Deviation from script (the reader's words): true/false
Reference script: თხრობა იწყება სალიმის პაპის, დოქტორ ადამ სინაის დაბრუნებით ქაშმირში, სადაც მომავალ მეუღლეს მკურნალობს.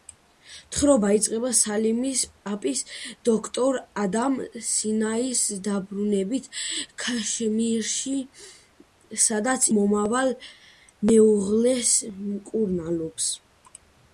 false